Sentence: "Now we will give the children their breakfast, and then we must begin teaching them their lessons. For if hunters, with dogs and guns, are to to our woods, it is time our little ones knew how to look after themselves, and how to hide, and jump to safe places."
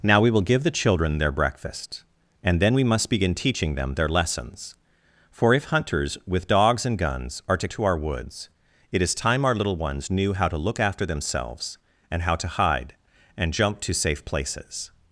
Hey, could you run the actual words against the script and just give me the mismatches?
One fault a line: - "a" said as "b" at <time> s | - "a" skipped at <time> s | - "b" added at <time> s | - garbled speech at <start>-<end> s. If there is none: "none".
none